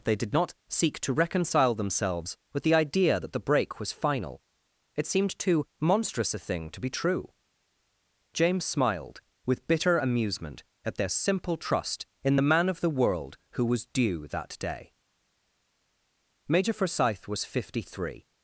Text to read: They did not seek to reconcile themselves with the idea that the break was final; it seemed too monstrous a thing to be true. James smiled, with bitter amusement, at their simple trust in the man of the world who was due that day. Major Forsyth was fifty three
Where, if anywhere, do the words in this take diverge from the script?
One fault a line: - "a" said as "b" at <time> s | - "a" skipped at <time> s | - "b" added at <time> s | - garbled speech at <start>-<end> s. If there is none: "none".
none